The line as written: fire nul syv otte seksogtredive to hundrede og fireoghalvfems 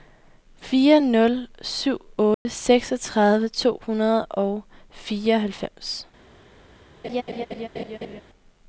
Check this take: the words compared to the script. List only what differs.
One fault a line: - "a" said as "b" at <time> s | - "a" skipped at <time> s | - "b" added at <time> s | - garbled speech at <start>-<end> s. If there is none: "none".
none